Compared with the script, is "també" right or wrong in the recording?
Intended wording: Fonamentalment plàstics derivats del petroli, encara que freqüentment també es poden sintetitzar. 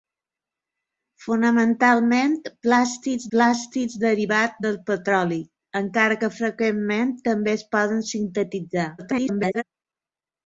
right